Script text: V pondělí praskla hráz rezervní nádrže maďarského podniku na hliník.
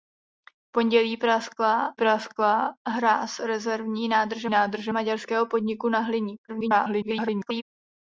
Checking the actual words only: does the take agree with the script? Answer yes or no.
no